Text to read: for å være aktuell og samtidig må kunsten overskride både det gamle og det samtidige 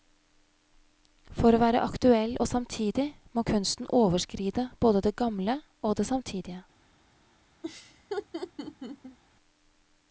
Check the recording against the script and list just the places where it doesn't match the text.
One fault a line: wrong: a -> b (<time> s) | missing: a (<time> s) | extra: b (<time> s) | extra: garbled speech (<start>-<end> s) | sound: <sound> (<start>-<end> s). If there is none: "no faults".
sound: laugh (7.6-9.2 s)